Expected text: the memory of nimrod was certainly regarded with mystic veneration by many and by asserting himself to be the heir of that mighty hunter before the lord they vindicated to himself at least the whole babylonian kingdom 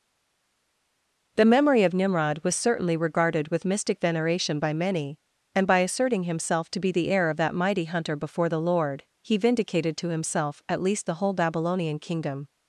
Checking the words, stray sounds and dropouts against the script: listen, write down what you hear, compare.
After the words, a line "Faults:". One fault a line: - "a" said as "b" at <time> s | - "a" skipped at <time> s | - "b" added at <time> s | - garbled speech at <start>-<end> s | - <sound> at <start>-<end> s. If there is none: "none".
the memory of nimrod was certainly regarded with mystic veneration by many and by asserting himself to be the heir of that mighty hunter before the lord he vindicated to himself at least the whole babylonian kingdom
Faults:
- "they" said as "he" at 9.2 s